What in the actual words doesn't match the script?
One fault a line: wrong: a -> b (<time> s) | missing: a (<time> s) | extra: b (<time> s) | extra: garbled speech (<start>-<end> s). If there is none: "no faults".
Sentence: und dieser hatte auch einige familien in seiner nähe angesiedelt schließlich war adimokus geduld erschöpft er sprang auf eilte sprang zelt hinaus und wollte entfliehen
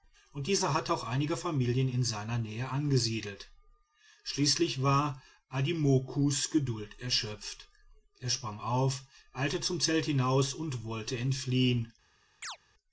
wrong: sprang -> zum (9.6 s)